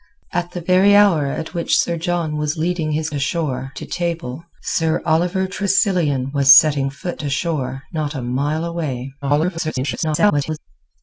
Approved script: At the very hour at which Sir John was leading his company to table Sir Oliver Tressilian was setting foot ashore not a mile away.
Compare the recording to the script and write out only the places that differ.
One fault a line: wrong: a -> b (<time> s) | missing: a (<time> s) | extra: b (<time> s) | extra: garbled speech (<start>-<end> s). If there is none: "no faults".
wrong: company -> ashore (3.1 s)
extra: garbled speech (9.2-10.6 s)